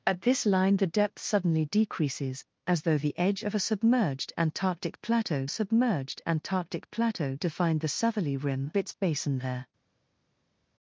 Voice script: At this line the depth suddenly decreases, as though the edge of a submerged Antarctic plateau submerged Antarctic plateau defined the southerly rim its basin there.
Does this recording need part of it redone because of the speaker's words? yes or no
no